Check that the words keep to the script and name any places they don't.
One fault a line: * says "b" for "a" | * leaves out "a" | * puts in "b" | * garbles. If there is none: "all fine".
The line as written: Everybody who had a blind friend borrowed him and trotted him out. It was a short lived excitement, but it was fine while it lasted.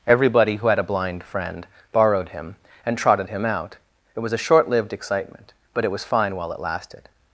all fine